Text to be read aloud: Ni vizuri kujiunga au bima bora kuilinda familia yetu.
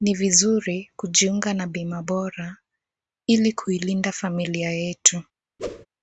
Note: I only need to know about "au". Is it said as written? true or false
false